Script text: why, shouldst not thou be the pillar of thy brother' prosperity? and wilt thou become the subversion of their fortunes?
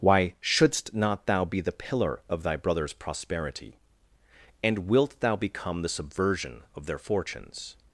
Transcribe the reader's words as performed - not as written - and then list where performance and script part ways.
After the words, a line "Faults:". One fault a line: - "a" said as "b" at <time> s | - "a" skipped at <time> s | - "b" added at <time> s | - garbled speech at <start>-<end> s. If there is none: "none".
why, shouldst not thou be the pillar of thy brothers' prosperity? and wilt thou become the subversion of their fortunes?
Faults:
- "brother" said as "brothers" at 2.6 s